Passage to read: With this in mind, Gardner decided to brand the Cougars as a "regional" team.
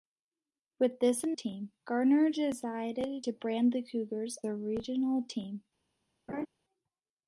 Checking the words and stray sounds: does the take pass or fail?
fail